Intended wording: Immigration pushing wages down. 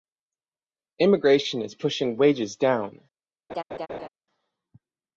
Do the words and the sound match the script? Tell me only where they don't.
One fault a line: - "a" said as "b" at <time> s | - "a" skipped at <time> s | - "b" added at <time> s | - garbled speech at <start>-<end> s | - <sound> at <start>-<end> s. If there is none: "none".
- "is" added at 1.6 s
- laugh at 3.5-4.1 s